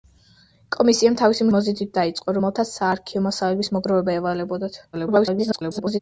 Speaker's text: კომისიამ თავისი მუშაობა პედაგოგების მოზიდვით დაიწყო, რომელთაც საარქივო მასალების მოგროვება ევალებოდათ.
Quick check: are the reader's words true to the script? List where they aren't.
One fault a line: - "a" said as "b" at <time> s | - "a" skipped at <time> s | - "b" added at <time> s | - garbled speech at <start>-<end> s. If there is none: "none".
- "მუშაობა პედაგოგების" skipped at 1.5 s
- garbled speech at 4.9-6.0 s